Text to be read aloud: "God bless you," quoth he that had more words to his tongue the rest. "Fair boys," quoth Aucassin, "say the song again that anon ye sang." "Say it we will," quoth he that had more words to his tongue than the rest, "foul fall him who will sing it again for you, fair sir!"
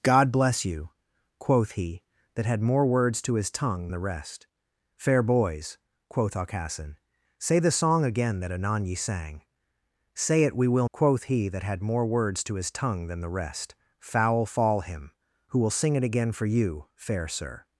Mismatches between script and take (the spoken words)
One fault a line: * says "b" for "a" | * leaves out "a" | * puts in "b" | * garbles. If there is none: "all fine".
all fine